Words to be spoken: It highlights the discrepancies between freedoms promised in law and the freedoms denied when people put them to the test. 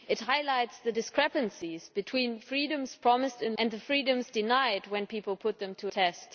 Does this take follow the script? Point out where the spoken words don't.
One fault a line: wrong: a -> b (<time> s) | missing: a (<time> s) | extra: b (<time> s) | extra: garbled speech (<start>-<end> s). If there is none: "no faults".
missing: law (3.6 s)
missing: the (5.9 s)